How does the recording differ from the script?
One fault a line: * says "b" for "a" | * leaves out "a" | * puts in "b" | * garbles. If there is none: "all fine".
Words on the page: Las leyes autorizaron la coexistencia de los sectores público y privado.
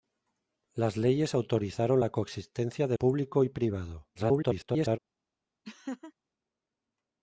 * leaves out "los sectores"
* garbles